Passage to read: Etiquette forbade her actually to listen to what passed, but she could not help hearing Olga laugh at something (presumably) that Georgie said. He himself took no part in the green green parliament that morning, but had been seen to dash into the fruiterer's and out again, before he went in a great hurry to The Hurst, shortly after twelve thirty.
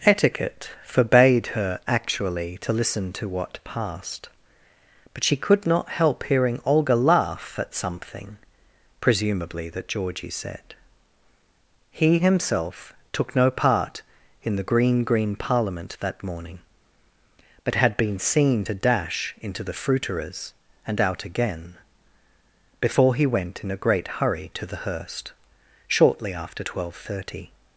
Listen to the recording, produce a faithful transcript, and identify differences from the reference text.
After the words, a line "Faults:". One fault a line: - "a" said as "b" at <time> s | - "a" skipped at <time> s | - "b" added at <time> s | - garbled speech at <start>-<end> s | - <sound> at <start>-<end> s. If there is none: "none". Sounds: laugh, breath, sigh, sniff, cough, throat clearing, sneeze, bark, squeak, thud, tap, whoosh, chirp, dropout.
Etiquette forbade her actually to listen to what passed, but she could not help hearing Olga laugh at something (presumably) that Georgie said. He himself took no part in the green green parliament that morning, but had been seen to dash into the fruiterer's and out again, before he went in a great hurry to The Hurst, shortly after twelve thirty.
Faults:
none